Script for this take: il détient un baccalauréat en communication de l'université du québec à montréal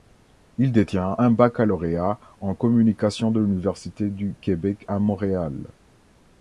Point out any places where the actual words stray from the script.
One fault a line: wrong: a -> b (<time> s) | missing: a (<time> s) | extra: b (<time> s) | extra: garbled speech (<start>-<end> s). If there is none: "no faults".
no faults